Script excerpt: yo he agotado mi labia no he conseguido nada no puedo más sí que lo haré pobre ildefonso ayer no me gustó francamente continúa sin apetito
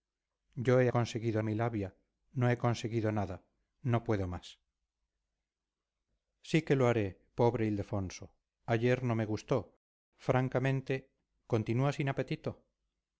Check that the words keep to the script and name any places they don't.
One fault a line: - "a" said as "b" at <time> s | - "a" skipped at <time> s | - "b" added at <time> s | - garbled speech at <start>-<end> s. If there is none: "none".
- "agotado" said as "conseguido" at 0.9 s